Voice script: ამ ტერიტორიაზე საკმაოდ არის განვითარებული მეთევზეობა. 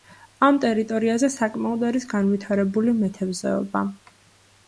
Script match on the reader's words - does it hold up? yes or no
yes